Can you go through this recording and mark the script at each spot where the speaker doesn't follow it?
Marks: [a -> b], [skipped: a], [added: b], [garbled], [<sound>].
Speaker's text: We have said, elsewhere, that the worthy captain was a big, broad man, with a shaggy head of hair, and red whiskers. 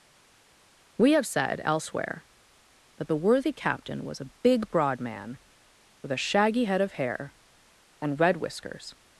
We have said, elsewhere, that the worthy captain was a big, broad man, with a shaggy head of hair, and red whiskers.